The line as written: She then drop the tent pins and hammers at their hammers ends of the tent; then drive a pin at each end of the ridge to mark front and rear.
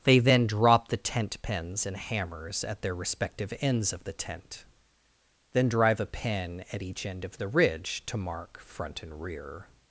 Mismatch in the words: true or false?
true